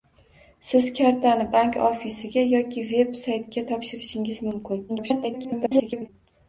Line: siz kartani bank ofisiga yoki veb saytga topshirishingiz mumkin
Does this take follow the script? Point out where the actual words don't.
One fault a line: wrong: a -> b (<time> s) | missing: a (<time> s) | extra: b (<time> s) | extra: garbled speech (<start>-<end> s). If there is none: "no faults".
extra: garbled speech (4.9-6.1 s)